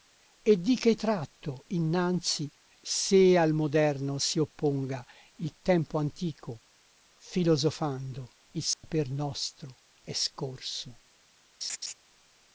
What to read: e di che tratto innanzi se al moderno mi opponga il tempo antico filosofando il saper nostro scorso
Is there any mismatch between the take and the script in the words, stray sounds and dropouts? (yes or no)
yes